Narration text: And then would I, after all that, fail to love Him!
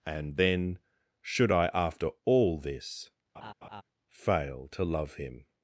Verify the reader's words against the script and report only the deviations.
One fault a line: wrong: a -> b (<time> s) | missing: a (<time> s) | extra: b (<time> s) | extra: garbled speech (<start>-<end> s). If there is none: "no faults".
wrong: would -> should (1.2 s)
wrong: that -> this (2.6 s)